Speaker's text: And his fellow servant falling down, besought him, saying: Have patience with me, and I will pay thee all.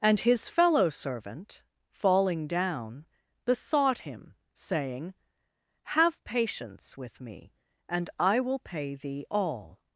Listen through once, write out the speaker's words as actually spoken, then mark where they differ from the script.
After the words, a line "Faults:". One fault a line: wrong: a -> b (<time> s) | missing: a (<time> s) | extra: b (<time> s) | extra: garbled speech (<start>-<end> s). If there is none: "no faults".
And his fellow servant falling down, besought him, saying: Have patience with me, and I will pay thee all.
Faults:
no faults